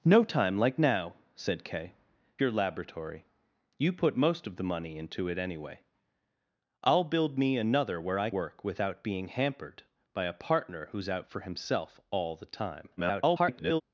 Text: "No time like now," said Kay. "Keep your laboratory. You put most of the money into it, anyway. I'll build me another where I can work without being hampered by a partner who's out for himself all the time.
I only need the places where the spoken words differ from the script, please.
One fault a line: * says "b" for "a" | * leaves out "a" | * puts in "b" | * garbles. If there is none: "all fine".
* leaves out "Keep"
* leaves out "can"
* garbles